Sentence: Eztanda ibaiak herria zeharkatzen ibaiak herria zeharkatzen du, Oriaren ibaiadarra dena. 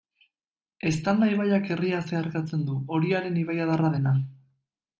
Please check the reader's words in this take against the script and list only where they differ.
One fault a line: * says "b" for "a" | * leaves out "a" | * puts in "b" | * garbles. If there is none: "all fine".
* leaves out "ibaiak herria zeharkatzen"